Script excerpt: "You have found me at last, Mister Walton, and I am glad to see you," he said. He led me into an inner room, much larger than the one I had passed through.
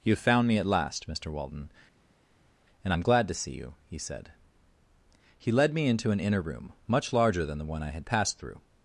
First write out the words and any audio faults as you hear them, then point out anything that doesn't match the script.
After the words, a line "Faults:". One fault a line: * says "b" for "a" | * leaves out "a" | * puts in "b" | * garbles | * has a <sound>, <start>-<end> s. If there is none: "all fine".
"You have found me at last, Mister Walton, and I am glad to see you," he said. He led me into an inner room, much larger than the one I had passed through.
Faults:
all fine